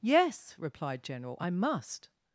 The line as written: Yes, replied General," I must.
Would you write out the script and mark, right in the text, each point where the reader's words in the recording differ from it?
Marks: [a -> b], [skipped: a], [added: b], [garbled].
Yes, replied General," I must.